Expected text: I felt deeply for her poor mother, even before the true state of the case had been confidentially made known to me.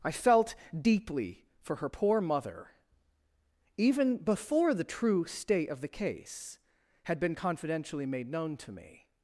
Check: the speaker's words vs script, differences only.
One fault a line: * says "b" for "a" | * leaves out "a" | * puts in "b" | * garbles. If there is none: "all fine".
all fine